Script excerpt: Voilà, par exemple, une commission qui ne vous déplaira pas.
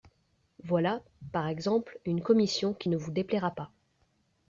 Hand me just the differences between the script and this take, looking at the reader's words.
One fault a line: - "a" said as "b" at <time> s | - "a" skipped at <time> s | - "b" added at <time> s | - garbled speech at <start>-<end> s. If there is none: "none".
none